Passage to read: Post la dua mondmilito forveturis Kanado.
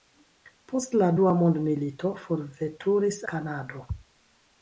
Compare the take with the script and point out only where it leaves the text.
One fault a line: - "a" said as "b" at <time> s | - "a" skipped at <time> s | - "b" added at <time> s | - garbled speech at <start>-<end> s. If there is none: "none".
none